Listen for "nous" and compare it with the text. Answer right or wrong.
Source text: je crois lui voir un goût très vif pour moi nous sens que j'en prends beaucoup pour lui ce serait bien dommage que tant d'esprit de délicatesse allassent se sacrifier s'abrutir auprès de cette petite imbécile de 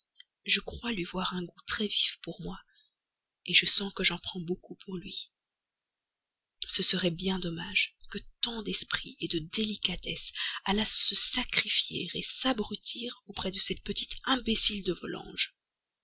wrong